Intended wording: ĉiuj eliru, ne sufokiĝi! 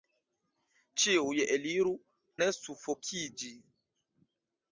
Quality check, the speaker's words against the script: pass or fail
pass